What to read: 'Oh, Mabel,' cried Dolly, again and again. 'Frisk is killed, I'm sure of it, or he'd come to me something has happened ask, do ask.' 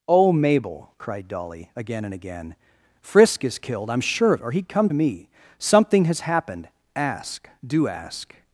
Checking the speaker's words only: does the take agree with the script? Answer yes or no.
no